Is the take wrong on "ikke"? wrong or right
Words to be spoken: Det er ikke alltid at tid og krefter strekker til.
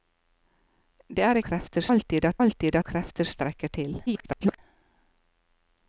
wrong